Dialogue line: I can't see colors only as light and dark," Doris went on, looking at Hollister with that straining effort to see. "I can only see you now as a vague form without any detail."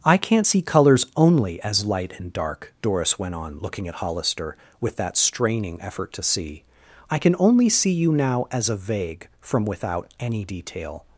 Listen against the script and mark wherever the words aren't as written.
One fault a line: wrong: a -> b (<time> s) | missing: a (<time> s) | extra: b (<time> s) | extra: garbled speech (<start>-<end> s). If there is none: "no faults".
wrong: form -> from (9.4 s)